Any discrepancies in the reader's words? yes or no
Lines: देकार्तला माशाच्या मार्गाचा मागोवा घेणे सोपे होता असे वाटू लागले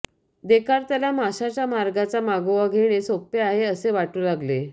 yes